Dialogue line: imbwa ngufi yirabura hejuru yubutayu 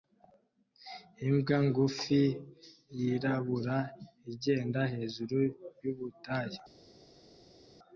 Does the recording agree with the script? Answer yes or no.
no